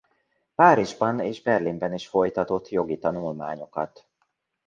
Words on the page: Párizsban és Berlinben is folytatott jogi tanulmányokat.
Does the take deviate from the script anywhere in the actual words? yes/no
no